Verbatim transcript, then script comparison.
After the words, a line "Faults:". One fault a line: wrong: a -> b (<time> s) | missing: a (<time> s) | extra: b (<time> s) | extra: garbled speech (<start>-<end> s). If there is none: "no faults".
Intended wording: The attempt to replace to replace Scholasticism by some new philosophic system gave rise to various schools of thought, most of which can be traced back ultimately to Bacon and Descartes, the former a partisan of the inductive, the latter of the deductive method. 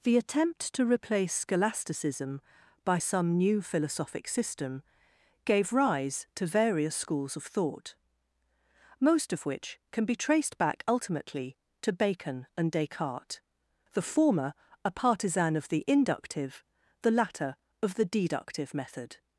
The attempt to replace Scholasticism by some new philosophic system gave rise to various schools of thought, most of which can be traced back ultimately to Bacon and Descartes, the former a partisan of the inductive, the latter of the deductive method.
Faults:
missing: to replace (1.3 s)